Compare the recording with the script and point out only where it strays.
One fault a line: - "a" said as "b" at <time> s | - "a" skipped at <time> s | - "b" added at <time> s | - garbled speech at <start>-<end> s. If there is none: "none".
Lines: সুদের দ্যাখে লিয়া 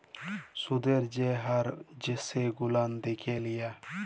- "যে হার সেগুলান" added at 1.1 s